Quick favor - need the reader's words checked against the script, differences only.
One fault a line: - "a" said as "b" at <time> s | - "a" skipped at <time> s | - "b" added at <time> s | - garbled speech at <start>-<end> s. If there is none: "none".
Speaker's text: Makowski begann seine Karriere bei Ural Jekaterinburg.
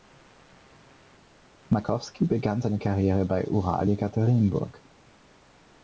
none